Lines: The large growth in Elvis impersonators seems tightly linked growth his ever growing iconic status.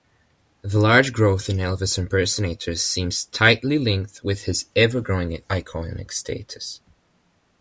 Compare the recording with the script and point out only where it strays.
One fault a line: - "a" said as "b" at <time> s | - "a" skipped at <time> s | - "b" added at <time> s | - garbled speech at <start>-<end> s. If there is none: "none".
- "growth" said as "with" at 4.2 s